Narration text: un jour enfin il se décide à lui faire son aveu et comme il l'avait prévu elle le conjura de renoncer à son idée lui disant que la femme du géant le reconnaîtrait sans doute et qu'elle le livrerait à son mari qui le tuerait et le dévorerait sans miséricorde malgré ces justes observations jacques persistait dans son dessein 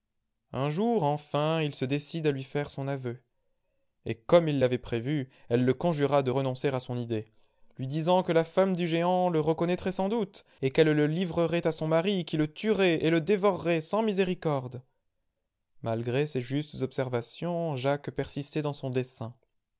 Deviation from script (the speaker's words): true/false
false